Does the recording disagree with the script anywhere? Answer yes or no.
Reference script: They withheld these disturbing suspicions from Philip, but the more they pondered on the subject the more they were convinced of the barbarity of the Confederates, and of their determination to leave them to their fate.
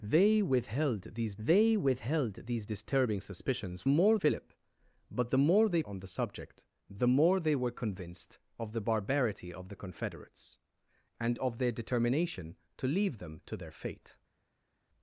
yes